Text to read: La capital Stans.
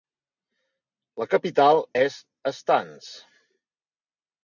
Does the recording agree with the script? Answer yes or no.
no